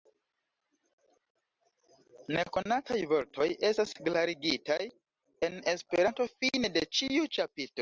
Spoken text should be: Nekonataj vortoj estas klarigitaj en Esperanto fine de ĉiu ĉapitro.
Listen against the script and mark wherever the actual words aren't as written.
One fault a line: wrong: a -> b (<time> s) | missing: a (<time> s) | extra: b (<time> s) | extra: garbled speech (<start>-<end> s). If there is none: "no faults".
no faults